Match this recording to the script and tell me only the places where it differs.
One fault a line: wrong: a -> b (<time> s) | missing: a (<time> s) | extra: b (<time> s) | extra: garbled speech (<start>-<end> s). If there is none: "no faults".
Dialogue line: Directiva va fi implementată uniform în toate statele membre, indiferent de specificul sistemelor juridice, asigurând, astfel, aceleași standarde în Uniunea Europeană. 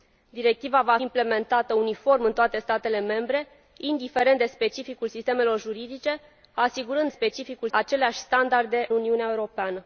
missing: fi (1.0 s)
wrong: astfel -> specificul (7.1 s)
missing: în (8.9 s)